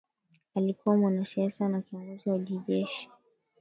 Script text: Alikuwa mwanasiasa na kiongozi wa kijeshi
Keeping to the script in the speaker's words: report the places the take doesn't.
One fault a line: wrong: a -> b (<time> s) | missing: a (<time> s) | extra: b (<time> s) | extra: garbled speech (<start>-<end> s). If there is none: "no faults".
no faults